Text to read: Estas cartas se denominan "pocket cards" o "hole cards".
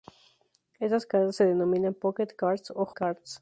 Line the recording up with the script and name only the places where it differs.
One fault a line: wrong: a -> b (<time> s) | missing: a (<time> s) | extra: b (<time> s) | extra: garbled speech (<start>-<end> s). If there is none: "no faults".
missing: hole (2.9 s)